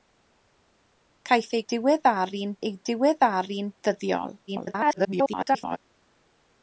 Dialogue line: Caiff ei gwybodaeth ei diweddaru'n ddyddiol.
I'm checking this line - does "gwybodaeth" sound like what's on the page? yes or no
no